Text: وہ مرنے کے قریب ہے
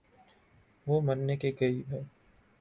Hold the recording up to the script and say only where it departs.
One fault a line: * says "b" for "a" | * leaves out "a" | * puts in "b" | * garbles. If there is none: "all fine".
all fine